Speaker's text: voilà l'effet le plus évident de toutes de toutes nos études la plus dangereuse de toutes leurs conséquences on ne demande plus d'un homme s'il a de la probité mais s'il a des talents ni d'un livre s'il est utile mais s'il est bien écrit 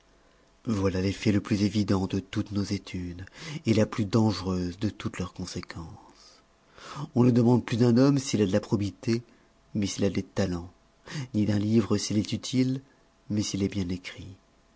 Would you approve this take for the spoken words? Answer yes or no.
no